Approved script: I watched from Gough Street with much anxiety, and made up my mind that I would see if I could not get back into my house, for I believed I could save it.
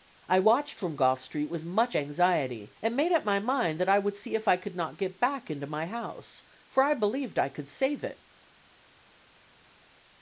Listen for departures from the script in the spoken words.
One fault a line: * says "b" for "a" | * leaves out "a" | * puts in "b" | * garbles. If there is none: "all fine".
all fine